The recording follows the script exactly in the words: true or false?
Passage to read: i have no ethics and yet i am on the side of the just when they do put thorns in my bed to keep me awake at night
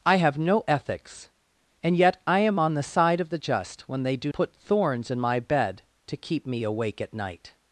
true